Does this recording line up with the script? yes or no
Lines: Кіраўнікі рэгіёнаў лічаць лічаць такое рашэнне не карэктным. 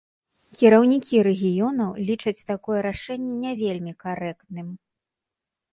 no